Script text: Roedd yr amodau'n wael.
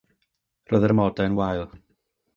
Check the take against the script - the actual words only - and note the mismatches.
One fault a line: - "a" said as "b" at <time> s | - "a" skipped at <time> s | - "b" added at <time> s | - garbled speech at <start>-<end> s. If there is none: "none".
none